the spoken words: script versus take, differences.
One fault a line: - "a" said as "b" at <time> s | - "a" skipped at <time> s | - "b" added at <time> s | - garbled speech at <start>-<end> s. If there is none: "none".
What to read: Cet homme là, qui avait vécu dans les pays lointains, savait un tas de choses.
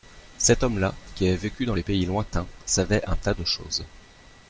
none